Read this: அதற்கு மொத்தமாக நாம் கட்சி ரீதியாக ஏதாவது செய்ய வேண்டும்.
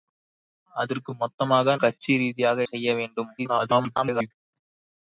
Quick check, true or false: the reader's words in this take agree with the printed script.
false